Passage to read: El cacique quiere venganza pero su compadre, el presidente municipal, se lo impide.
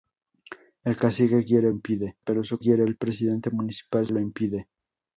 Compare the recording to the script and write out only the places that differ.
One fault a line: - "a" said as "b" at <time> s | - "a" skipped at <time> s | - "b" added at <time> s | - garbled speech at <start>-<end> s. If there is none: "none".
- "venganza" said as "impide" at 1.7 s
- "compadre" said as "quiere" at 2.6 s
- "se" skipped at 4.1 s